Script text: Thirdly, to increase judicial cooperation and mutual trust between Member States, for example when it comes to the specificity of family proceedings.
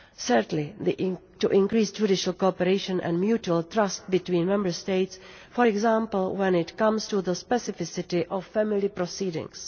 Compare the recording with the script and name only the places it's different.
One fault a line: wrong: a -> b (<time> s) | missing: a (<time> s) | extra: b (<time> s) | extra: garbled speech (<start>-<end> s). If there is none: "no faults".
no faults